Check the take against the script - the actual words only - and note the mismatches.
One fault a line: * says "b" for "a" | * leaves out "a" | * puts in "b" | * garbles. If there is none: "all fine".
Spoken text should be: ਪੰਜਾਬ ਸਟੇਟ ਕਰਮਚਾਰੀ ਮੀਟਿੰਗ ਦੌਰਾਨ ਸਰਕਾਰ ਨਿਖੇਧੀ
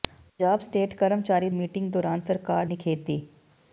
all fine